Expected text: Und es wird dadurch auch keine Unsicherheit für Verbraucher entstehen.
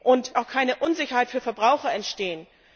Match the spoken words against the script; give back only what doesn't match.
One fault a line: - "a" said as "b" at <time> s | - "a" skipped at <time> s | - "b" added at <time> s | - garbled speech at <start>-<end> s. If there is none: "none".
- "es wird dadurch" skipped at 0.3 s